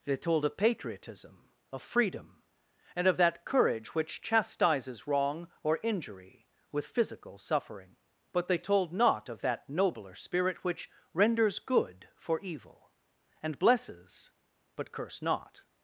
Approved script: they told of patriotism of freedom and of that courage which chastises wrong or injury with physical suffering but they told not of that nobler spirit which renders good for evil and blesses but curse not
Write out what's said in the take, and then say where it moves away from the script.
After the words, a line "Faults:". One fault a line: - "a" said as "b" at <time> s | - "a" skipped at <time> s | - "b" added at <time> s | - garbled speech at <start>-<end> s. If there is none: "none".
they told of patriotism of freedom and of that courage which chastises wrong or injury with physical suffering but they told not of that nobler spirit which renders good for evil and blesses but curse not
Faults:
none